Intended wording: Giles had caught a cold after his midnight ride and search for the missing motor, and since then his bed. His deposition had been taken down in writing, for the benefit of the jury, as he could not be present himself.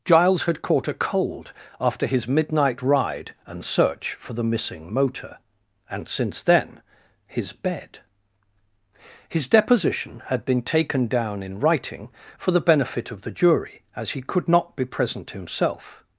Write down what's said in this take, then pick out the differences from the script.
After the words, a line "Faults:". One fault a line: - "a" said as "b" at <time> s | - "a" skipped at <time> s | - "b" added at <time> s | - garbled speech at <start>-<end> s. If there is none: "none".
Giles had caught a cold after his midnight ride and search for the missing motor, and since then his bed. His deposition had been taken down in writing, for the benefit of the jury, as he could not be present himself.
Faults:
none